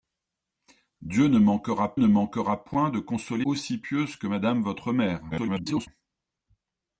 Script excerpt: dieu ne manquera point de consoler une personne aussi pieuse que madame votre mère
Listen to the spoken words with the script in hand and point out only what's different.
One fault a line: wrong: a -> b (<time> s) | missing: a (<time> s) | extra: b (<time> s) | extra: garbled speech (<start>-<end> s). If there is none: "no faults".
extra: ne manquera (2.0 s)
missing: une personne (3.5 s)
extra: garbled speech (5.3-5.9 s)